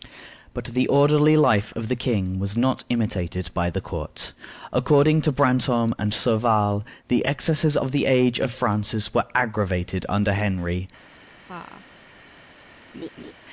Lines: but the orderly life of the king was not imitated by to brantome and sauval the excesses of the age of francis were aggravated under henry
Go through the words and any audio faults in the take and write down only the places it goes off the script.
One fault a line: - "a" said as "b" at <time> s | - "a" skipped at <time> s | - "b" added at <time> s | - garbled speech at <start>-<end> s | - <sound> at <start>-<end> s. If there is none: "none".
- "the court according" added at 3.7 s
- laugh at 11.4-11.8 s
- laugh at 12.9-13.3 s